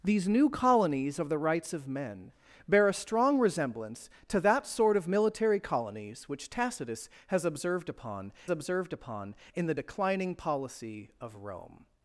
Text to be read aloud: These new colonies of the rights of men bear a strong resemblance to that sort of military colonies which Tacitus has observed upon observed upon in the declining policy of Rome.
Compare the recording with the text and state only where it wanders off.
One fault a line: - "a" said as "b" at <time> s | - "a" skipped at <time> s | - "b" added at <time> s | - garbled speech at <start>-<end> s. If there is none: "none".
none